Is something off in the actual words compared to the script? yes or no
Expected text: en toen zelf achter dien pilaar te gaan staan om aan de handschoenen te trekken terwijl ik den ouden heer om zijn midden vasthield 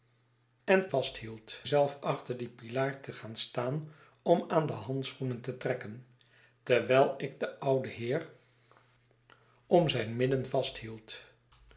yes